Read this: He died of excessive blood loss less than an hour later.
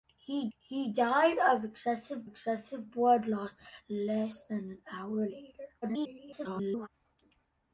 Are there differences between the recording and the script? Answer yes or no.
yes